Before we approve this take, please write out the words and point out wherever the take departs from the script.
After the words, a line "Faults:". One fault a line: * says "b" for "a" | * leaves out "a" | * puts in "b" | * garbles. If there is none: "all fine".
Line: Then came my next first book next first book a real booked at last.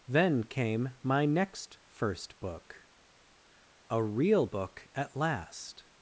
Then came my next first book a real book at last.
Faults:
* leaves out "next first book"
* says "book" for "booked"